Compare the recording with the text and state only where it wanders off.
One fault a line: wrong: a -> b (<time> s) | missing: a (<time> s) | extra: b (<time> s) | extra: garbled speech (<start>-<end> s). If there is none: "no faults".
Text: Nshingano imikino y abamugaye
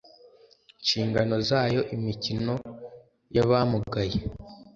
extra: zayo (1.5 s)